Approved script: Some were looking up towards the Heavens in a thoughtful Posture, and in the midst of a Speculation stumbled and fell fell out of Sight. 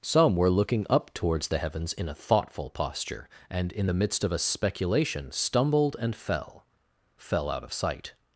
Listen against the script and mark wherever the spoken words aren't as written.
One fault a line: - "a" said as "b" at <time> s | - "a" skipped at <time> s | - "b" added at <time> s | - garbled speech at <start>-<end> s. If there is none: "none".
none